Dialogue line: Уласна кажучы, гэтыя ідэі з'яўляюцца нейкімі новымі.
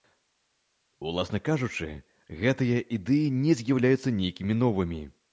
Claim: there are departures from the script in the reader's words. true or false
true